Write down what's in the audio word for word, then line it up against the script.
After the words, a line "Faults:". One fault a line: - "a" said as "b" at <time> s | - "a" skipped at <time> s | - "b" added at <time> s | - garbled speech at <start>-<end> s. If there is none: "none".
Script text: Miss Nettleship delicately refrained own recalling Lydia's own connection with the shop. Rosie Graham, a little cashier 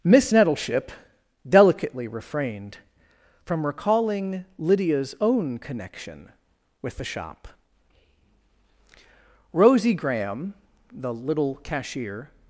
Miss Nettleship delicately refrained from recalling Lydia's own connection with the shop. Rosie Graham, the little cashier
Faults:
- "own" said as "from" at 3.5 s
- "a" said as "the" at 10.9 s